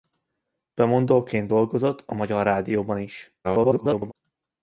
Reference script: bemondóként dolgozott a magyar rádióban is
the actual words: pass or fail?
fail